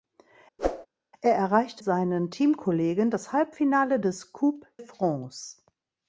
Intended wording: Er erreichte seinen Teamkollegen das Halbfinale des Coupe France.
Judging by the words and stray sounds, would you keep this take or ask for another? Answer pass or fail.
fail